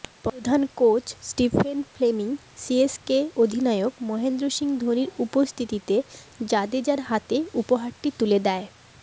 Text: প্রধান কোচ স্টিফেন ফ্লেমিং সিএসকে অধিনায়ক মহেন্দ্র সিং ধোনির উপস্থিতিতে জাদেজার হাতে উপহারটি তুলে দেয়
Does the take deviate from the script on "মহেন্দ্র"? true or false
false